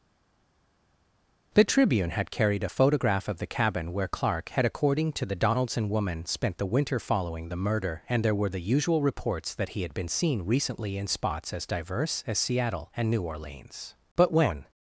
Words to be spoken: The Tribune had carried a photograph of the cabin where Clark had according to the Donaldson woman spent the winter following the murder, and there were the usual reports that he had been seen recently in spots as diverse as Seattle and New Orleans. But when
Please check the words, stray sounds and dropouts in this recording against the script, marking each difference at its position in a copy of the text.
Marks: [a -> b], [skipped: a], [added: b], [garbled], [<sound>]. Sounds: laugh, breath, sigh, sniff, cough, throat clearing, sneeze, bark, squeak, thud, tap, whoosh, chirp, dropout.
The Tribune had carried a photograph of the cabin where Clark had according to the Donaldson woman spent the winter following the murder, and there were the usual reports that he had been seen recently in spots as diverse as Seattle and New Orleans. But when